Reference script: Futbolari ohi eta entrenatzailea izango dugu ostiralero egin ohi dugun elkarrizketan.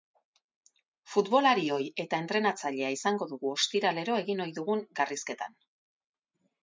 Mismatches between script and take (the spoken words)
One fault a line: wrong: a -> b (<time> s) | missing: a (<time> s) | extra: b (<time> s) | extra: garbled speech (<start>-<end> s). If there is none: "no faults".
no faults